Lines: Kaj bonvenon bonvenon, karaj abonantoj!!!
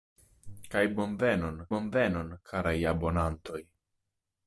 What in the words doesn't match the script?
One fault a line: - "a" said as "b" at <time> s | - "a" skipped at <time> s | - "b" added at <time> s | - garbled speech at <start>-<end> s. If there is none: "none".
none